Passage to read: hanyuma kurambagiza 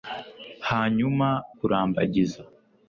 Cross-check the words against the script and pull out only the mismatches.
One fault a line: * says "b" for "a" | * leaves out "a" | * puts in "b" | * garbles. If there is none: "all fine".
all fine